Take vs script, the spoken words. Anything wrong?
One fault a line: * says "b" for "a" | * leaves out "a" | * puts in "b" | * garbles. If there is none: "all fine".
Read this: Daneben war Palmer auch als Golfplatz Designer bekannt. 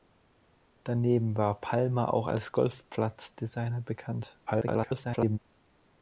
* garbles